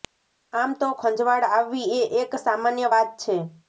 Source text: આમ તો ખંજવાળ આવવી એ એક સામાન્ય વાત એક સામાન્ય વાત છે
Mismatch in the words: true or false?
true